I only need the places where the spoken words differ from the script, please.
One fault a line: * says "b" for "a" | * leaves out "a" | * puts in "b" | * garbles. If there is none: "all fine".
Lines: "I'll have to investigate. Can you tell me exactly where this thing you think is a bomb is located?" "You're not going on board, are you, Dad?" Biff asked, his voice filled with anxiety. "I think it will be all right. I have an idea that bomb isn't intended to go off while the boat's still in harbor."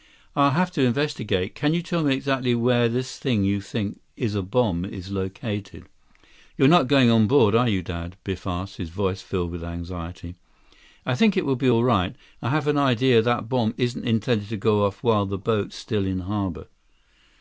all fine